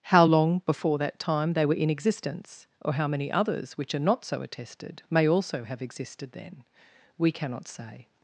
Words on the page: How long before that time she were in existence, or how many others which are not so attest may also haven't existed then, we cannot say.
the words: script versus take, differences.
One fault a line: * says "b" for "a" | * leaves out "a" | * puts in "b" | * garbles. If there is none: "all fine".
* says "they" for "she"
* says "attested" for "attest"
* says "have" for "haven't"